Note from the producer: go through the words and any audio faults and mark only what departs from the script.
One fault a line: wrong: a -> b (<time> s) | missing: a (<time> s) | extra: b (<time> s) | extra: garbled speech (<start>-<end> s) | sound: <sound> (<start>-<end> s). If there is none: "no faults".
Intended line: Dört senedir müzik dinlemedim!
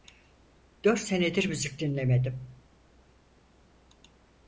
no faults